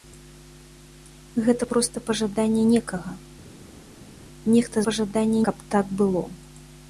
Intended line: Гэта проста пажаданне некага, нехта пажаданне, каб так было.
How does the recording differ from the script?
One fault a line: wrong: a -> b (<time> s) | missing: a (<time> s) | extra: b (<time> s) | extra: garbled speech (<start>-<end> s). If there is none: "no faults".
no faults